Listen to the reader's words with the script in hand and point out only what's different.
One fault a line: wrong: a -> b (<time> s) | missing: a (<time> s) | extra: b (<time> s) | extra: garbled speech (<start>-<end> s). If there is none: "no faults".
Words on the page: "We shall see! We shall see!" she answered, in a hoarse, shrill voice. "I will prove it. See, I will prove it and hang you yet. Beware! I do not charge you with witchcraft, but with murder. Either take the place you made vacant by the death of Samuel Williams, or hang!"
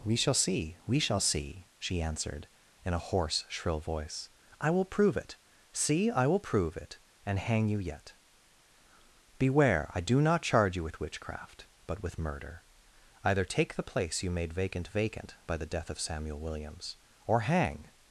extra: vacant (14.9 s)